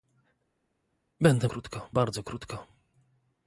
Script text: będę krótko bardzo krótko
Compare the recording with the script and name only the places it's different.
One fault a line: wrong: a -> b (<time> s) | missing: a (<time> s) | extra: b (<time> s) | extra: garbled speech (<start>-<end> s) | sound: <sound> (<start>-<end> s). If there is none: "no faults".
no faults